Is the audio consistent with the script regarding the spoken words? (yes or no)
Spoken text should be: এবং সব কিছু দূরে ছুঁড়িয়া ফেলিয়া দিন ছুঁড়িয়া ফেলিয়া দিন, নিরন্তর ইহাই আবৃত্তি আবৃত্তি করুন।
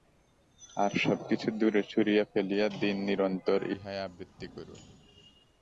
no